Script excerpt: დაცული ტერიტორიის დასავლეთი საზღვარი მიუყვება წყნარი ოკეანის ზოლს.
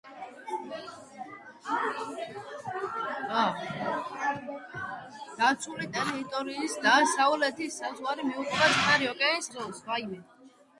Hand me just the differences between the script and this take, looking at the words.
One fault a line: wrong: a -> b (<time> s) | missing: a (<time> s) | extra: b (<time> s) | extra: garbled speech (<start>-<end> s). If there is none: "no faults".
no faults